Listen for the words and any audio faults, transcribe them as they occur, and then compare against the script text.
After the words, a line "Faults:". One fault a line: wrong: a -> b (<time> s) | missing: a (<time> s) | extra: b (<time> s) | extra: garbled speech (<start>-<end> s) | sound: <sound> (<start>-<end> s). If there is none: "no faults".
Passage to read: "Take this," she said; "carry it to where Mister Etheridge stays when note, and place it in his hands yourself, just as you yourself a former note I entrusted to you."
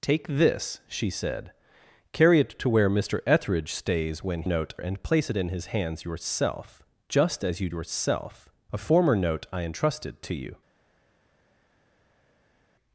"Take this," she said; "carry it to where Mister Etheridge stays when note, and place it in his hands yourself, just as you yourself a former note I entrusted to you."
Faults:
no faults